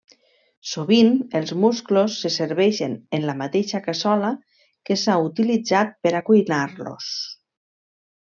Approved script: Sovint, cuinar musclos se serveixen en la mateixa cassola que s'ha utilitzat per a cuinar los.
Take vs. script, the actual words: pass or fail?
fail